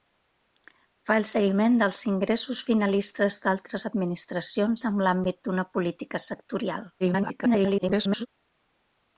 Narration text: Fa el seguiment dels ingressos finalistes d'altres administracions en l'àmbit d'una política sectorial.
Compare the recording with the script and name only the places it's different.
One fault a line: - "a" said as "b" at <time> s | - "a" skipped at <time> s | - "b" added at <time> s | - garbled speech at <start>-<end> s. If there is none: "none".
- garbled speech at 7.0-8.3 s